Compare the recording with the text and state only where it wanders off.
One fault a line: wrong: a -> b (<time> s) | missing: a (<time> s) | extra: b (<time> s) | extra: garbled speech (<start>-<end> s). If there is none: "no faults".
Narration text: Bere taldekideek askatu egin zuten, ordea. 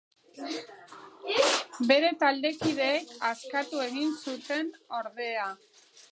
no faults